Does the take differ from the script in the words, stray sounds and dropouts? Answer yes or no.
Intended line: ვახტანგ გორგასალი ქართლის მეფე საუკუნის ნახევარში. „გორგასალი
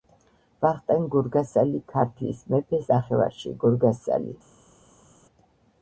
yes